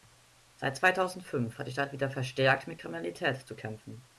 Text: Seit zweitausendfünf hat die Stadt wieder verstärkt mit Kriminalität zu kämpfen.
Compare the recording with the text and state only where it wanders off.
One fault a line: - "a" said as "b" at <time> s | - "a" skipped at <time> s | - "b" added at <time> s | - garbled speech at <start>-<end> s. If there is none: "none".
none